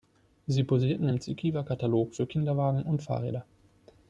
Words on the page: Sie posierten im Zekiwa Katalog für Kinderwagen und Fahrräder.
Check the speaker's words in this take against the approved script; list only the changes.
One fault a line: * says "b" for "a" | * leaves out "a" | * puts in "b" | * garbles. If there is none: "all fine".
all fine